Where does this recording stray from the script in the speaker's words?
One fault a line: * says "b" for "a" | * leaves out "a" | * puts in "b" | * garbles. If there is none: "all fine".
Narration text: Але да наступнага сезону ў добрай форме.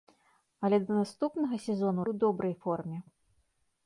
all fine